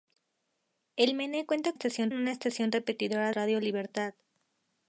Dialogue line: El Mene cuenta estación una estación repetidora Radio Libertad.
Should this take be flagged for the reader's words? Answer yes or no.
no